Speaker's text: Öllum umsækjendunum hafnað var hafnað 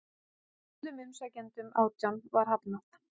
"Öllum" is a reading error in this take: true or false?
false